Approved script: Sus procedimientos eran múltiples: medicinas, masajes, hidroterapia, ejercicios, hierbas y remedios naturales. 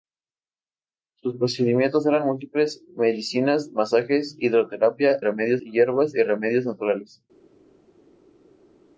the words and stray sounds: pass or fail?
fail